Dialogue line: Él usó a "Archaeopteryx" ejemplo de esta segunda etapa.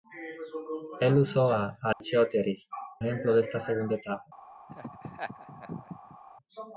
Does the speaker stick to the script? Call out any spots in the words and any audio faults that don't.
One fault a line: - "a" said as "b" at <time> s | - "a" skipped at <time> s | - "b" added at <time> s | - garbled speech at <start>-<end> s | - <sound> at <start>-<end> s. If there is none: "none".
- dropout at 1.9-2.0 s
- laugh at 4.7-6.2 s